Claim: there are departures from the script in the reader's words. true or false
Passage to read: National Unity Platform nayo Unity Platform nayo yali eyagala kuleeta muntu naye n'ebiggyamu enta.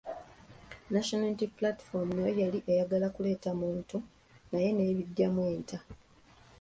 true